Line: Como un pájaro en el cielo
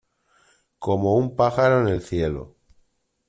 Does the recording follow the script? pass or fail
pass